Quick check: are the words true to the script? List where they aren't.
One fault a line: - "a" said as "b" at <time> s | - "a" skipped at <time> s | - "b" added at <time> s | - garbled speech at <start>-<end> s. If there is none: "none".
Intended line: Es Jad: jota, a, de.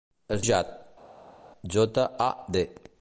none